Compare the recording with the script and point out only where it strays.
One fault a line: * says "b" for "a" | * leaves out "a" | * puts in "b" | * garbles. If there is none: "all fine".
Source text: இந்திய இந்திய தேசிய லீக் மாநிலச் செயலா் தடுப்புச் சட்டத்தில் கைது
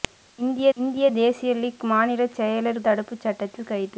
all fine